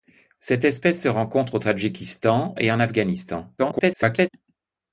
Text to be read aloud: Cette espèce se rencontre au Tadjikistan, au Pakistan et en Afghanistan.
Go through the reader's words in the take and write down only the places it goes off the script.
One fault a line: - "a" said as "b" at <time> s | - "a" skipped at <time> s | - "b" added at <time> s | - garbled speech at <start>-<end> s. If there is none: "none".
- "au Pakistan" skipped at 2.5 s
- garbled speech at 3.6-4.3 s